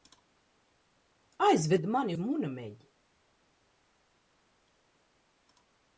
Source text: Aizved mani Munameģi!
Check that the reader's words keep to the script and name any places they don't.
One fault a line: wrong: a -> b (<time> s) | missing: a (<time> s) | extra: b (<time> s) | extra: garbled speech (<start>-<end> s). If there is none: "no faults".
no faults